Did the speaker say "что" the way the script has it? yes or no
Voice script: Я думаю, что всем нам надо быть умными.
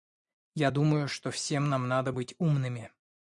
yes